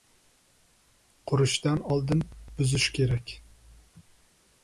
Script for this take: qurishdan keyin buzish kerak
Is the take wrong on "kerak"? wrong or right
right